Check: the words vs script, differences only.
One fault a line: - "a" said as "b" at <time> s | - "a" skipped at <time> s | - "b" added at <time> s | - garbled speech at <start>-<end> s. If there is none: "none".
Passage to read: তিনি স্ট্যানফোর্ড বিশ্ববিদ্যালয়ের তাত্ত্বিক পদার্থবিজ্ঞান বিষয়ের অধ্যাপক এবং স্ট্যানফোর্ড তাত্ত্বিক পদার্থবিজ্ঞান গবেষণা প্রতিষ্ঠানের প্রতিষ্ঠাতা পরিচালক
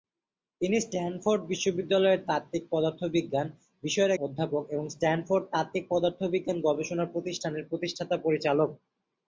none